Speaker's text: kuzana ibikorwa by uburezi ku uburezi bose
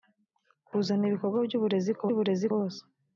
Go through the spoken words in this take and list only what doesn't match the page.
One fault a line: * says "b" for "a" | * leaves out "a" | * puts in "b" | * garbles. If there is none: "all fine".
all fine